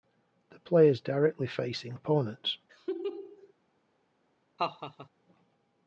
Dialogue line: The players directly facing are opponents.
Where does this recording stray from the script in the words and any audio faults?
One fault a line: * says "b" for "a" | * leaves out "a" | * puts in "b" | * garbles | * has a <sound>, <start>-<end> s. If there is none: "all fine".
* leaves out "are"
* has a laugh, 2.7-3.5 s
* has a laugh, 4.6-5.1 s